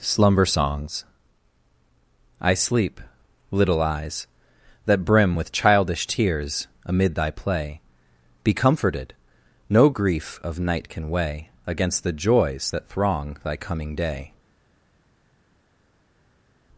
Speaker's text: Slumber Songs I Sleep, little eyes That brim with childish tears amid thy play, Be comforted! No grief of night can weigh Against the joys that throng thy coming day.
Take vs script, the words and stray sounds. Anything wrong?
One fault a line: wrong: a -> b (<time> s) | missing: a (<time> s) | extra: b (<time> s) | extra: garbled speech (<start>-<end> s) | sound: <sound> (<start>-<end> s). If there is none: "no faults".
no faults